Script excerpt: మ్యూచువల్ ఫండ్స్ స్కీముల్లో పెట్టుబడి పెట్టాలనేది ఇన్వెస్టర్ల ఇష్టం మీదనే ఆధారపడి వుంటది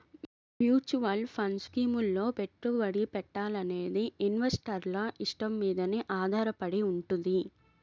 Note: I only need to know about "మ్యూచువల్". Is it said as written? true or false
true